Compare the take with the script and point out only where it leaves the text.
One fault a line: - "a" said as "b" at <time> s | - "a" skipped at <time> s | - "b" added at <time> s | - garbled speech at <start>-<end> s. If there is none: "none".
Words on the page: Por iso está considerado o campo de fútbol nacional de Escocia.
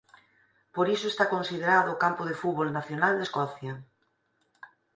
none